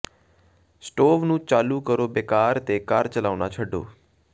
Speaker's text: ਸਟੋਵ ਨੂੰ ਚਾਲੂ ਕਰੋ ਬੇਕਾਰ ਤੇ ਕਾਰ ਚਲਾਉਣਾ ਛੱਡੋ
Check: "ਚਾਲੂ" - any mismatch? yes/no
no